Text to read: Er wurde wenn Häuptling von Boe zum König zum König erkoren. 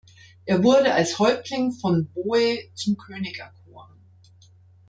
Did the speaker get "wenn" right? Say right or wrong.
wrong